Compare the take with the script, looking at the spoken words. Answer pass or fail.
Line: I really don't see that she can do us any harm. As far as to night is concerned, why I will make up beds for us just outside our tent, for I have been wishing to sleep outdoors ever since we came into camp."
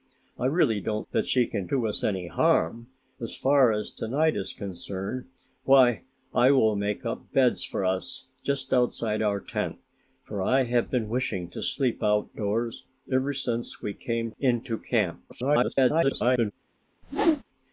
fail